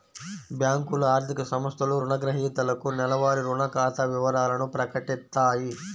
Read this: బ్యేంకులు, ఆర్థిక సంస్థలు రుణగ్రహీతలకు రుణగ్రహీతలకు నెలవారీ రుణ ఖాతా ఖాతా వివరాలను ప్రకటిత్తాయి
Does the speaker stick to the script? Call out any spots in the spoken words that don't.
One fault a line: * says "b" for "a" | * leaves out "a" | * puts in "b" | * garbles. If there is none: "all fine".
* leaves out "రుణగ్రహీతలకు"
* leaves out "ఖాతా"